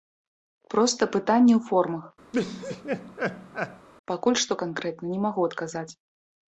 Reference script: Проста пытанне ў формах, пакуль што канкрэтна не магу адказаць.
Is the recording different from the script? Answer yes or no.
no